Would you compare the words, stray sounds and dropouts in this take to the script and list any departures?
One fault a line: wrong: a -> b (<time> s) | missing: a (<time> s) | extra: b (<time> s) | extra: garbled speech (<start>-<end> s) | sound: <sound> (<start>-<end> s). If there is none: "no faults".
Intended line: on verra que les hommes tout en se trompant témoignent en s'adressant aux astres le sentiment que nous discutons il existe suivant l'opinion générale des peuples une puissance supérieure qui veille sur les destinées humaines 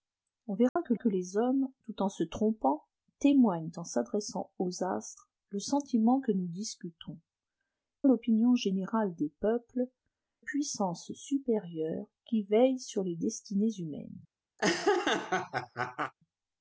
sound: dropout (0.7-0.8 s)
extra: que (0.9 s)
missing: il existe suivant (7.2 s)
missing: une (9.9 s)
sound: laugh (14.6-16.1 s)